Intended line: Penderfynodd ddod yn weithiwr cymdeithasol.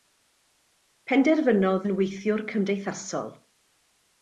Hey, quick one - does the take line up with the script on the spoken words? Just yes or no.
no